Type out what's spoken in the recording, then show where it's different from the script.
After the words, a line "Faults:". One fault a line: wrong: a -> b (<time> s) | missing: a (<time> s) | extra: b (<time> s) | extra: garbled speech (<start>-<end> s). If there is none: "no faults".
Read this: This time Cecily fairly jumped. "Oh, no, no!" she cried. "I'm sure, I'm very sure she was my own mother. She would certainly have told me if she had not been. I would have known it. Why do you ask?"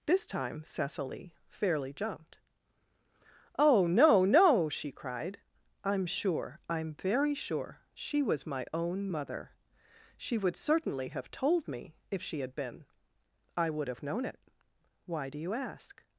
This time Cecily fairly jumped. "Oh, no, no!" she cried. "I'm sure, I'm very sure she was my own mother. She would certainly have told me if she had been. I would have known it. Why do you ask?"
Faults:
missing: not (12.6 s)